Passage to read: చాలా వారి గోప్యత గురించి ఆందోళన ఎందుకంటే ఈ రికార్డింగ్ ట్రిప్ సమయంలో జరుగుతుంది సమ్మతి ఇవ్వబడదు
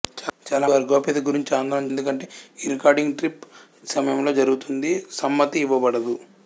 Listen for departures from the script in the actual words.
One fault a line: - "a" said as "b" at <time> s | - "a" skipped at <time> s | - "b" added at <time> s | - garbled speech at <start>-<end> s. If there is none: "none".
none